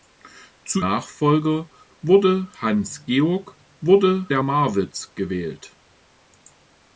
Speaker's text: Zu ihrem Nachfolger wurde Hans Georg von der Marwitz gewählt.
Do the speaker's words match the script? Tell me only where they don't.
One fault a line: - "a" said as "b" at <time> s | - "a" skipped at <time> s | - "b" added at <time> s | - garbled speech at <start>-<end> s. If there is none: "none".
- "ihrem" skipped at 0.8 s
- "von" said as "wurde" at 3.8 s